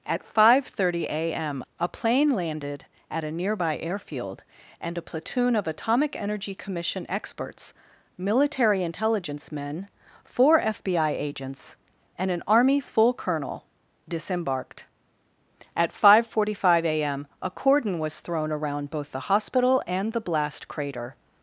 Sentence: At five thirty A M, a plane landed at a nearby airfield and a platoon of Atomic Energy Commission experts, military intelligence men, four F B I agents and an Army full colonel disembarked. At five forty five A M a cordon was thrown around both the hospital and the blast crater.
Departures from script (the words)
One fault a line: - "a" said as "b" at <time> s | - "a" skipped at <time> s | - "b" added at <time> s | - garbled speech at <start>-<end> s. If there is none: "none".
none